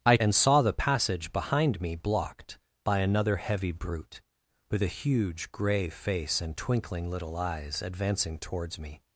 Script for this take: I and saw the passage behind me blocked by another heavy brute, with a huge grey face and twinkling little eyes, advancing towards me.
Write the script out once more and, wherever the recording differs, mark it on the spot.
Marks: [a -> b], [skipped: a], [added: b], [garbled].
I and saw the passage behind me blocked by another heavy brute, with a huge grey face and twinkling little eyes, advancing towards me.